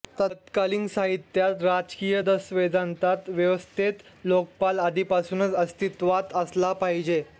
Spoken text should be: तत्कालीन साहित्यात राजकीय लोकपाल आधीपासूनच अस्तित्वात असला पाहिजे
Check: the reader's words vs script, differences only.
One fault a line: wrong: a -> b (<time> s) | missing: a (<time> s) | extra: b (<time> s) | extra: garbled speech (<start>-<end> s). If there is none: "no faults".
extra: दस्तावेजांत व्यवस्थेत (2.2 s)